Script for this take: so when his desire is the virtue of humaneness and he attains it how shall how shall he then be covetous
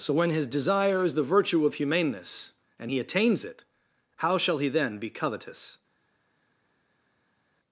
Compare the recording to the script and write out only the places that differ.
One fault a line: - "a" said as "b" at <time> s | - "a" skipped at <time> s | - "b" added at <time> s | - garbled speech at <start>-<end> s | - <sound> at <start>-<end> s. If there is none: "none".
- "how shall" skipped at 4.6 s